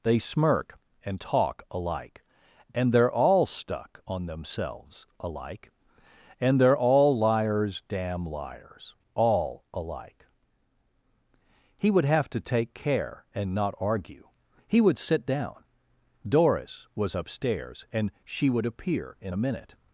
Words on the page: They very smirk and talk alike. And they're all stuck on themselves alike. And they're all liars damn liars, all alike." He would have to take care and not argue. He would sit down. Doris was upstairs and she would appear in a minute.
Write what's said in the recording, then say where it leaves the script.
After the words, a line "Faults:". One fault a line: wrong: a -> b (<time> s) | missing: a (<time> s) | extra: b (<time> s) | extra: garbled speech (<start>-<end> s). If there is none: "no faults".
They smirk and talk alike. And they're all stuck on themselves alike. And they're all liars damn liars, all alike." He would have to take care and not argue. He would sit down. Doris was upstairs and she would appear in a minute.
Faults:
missing: very (0.2 s)